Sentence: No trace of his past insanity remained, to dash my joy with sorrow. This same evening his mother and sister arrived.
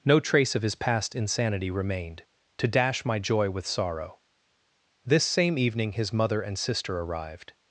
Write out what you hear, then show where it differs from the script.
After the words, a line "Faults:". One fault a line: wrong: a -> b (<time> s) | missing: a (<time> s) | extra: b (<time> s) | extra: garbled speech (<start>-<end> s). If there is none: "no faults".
No trace of his past insanity remained, to dash my joy with sorrow. This same evening his mother and sister arrived.
Faults:
no faults